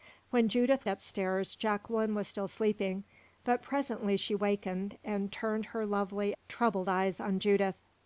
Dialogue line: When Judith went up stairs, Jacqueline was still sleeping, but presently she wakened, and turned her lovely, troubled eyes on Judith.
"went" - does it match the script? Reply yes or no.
no